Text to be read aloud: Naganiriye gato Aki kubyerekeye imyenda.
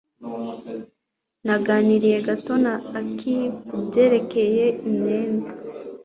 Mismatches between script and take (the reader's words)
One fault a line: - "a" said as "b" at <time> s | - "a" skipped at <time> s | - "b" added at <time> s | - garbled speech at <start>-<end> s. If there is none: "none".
- "na" added at 2.6 s